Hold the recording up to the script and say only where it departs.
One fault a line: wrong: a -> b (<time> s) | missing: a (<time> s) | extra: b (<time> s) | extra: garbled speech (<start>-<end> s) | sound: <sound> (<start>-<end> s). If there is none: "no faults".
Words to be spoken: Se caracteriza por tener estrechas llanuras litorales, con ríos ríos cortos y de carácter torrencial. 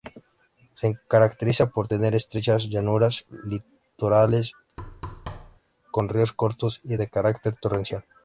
sound: thud (4.8-5.6 s)
missing: ríos (6.3 s)